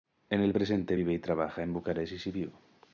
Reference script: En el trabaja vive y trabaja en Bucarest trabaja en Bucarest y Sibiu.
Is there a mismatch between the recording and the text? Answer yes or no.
yes